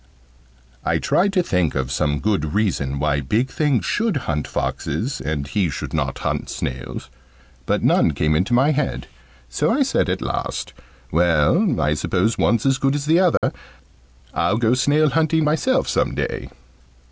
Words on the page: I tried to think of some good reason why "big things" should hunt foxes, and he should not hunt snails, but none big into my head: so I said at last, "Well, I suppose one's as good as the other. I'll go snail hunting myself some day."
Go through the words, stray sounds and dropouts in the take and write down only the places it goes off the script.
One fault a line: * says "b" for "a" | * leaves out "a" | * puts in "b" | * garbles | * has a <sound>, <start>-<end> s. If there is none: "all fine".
* says "came" for "big"
* has a dropout, 13.4-13.4 s